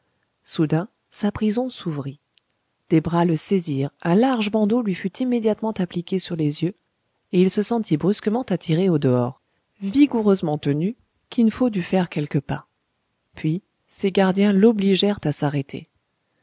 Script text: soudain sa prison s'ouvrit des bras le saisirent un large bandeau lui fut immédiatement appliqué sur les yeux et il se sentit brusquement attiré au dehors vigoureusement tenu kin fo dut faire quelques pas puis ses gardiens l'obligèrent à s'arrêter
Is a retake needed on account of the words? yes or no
no